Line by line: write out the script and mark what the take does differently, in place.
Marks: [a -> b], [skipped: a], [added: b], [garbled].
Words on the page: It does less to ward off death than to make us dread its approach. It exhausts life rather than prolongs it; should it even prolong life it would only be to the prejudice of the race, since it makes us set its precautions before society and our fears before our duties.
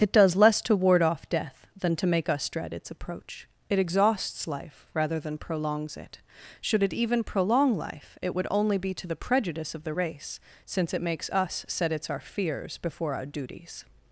It does less to ward off death than to make us dread its approach. It exhausts life rather than prolongs it; should it even prolong life it would only be to the prejudice of the race, since it makes us set its [skipped: precautions before society and] our fears before our duties.